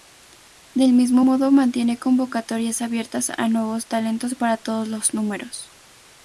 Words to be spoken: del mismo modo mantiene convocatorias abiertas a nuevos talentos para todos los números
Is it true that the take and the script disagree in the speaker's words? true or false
false